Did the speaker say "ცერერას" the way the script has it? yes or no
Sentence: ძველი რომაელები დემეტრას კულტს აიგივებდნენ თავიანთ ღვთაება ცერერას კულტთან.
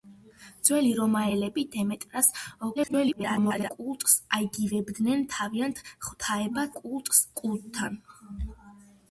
no